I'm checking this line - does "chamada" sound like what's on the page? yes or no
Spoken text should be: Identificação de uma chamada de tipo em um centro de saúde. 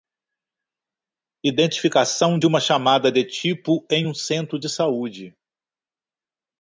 yes